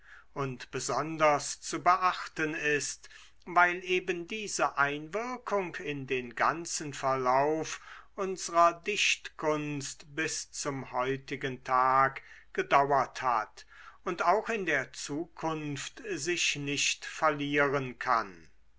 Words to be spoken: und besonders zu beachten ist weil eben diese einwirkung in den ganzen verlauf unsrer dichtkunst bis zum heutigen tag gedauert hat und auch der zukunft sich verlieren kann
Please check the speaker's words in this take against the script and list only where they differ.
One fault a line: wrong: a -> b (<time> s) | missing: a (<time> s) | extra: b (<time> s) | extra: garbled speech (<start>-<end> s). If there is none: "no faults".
extra: in (14.5 s)
extra: nicht (16.5 s)